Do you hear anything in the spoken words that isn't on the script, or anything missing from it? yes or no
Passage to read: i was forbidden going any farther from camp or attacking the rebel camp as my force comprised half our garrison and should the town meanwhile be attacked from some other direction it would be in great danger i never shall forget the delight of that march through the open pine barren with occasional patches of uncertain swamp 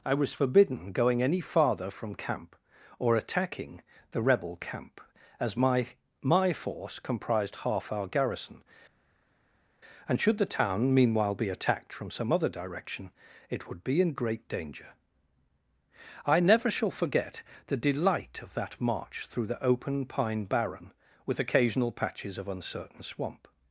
yes